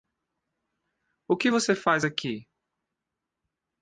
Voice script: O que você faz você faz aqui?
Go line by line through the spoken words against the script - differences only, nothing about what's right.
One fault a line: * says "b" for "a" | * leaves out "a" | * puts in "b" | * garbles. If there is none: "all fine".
* leaves out "você faz"